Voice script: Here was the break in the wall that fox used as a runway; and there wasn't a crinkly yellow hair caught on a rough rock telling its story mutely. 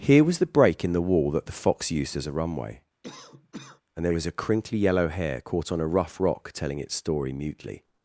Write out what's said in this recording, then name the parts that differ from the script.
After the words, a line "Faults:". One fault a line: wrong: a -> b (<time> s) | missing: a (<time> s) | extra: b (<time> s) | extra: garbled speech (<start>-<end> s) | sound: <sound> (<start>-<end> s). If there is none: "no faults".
Here was the break in the wall that the fox used as a runway; and there was a crinkly yellow hair caught on a rough rock telling its story mutely.
Faults:
extra: the (1.4 s)
sound: cough (3.0-3.8 s)
wrong: wasn't -> was (4.1 s)